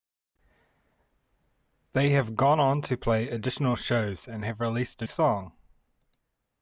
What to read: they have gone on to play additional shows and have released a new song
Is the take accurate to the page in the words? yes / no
no